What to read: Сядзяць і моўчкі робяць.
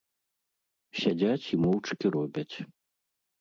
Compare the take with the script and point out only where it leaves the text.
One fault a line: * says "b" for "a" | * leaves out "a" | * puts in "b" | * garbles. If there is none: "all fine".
all fine